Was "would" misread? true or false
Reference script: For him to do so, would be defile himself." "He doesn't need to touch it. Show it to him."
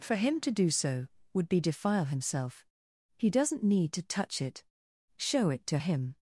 false